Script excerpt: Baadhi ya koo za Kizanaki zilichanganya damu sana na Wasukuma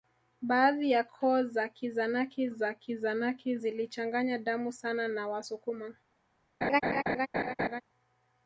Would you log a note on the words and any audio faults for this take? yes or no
yes